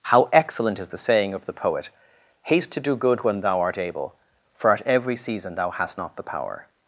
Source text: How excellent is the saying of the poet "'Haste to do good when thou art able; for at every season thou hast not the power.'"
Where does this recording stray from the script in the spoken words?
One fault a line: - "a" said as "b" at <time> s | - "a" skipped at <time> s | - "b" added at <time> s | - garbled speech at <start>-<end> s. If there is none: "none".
none